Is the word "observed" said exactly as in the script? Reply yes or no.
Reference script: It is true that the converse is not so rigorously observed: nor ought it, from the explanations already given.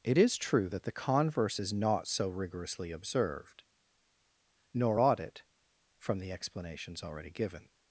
yes